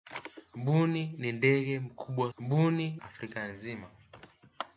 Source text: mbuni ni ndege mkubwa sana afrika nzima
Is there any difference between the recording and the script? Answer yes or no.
yes